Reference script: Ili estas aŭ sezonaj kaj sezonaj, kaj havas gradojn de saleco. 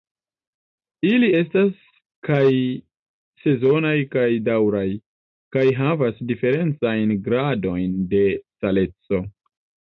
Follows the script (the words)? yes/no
no